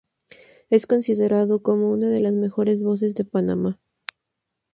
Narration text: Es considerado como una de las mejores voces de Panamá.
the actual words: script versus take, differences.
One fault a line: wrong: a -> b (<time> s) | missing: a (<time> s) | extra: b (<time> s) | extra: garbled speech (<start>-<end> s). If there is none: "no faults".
no faults